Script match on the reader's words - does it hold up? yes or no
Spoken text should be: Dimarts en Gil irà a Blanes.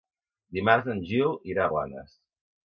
yes